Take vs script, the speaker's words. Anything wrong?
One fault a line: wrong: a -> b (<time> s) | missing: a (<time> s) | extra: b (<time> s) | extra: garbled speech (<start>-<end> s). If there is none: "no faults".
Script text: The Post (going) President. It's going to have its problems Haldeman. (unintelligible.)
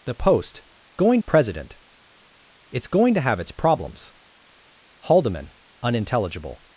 no faults